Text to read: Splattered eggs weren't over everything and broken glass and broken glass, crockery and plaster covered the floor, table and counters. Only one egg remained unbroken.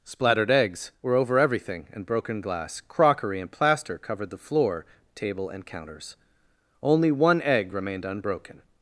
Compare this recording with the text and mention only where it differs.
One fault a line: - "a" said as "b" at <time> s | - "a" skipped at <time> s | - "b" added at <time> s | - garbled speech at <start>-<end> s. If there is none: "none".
- "weren't" said as "were" at 1.0 s
- "and broken glass" skipped at 2.8 s